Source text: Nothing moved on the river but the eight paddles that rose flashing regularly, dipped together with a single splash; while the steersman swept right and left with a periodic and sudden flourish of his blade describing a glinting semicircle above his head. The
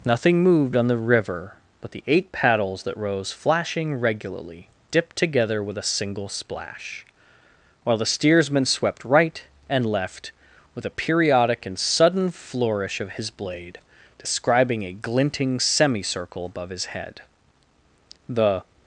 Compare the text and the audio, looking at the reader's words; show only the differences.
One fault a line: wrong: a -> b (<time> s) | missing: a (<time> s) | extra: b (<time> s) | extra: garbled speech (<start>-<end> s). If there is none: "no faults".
no faults